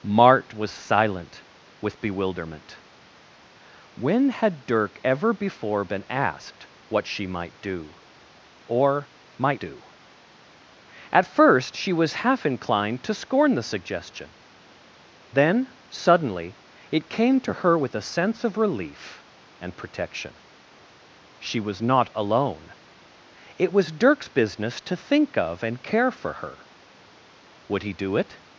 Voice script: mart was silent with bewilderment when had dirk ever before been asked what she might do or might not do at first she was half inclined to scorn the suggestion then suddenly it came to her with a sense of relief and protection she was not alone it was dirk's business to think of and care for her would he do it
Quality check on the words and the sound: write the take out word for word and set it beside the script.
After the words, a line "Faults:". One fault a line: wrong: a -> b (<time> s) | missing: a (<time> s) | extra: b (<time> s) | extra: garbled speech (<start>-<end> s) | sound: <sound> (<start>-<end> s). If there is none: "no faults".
mart was silent with bewilderment when had dirk ever before been asked what she might do or might do at first she was half inclined to scorn the suggestion then suddenly it came to her with a sense of relief and protection she was not alone it was dirk's business to think of and care for her would he do it
Faults:
missing: not (9.6 s)